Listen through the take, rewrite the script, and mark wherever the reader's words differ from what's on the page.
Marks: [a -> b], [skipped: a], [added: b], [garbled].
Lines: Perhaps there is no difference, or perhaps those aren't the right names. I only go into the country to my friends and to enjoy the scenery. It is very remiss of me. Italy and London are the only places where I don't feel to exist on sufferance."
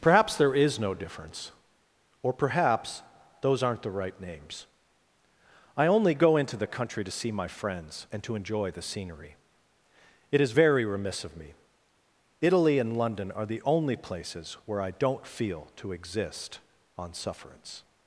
Perhaps there is no difference, or perhaps those aren't the right names. I only go into the country to [added: see] my friends and to enjoy the scenery. It is very remiss of me. Italy and London are the only places where I don't feel to exist on sufferance."